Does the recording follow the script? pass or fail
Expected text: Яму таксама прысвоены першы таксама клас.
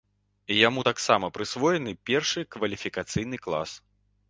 fail